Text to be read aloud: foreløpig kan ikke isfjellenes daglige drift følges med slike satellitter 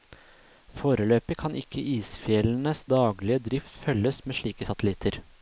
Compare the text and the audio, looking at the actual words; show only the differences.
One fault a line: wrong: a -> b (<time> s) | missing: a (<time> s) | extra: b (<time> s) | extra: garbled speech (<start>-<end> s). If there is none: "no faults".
no faults